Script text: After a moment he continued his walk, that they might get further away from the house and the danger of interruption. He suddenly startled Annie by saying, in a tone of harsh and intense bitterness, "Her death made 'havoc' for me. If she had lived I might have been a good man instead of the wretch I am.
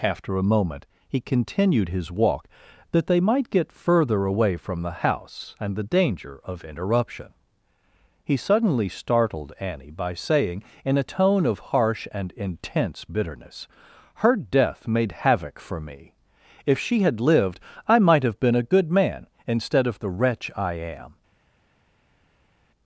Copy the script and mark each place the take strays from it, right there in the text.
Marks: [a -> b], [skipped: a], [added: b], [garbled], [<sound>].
After a moment he continued his walk, that they might get further away from the house and the danger of interruption. He suddenly startled Annie by saying, in a tone of harsh and intense bitterness, "Her death made 'havoc' for me. If she had lived I might have been a good man instead of the wretch I am.